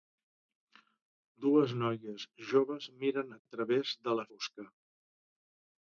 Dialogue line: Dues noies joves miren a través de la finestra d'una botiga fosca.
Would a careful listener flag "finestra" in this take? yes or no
yes